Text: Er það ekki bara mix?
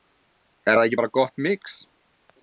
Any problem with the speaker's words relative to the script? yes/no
yes